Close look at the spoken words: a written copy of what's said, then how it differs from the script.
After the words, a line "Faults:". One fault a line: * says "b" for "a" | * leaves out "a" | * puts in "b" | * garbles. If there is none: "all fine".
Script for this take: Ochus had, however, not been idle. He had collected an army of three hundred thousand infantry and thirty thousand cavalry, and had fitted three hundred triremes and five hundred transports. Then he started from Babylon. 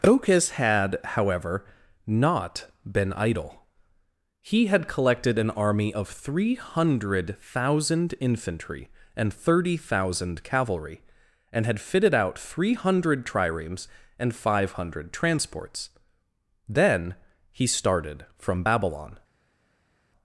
Ochus had, however, not been idle. He had collected an army of three hundred thousand infantry and thirty thousand cavalry, and had fitted out three hundred triremes and five hundred transports. Then he started from Babylon.
Faults:
* puts in "out"